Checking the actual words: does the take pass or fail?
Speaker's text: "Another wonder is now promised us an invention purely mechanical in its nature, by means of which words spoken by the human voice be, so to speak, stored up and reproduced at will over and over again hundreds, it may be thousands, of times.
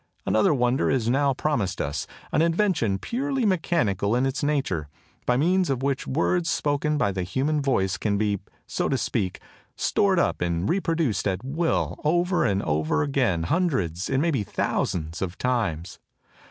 fail